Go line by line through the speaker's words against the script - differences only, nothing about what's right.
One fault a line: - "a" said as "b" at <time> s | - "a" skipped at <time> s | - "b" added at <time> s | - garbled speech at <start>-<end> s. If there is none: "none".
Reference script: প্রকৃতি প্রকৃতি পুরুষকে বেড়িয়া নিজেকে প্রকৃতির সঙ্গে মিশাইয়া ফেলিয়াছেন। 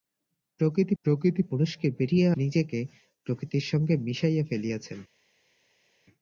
none